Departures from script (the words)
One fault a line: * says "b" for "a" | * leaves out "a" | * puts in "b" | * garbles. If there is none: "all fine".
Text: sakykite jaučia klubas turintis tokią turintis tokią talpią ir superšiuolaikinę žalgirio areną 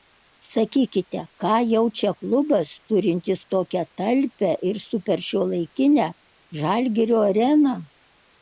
* puts in "ką"
* leaves out "turintis tokią"